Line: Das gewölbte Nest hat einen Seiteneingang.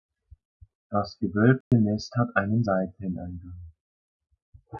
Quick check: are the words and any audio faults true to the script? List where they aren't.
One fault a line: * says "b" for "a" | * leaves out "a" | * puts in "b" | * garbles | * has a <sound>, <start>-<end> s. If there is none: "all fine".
* has a dropout, 1.6-1.7 s